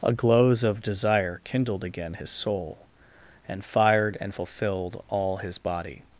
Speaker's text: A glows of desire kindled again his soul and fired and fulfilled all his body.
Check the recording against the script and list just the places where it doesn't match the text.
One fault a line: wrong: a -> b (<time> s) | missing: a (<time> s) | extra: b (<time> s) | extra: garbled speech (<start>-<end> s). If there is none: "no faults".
no faults